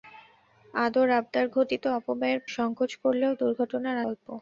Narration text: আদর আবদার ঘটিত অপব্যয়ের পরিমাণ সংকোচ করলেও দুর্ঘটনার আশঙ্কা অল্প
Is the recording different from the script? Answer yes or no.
yes